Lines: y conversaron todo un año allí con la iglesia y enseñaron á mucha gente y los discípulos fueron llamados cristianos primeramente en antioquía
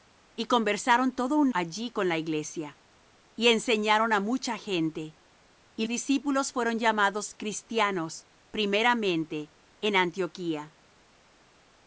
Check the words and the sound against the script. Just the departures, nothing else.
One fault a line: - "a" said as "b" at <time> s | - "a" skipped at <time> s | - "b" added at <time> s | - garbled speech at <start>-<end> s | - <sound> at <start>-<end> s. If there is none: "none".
- "año" skipped at 1.5 s
- "los" skipped at 5.9 s